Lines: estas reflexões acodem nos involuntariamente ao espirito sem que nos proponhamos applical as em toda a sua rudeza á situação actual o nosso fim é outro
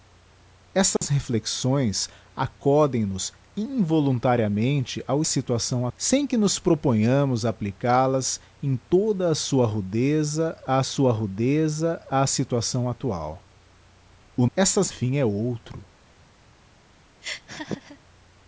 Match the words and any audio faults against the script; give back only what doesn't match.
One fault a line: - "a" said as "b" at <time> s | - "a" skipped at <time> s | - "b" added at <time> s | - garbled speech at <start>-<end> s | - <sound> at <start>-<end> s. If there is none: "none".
- dropout at 1.0-1.0 s
- "espirito" said as "situação" at 5.2 s
- "sua rudeza á" added at 10.8 s
- "nosso" said as "estas" at 14.5 s
- laugh at 17.2-18.0 s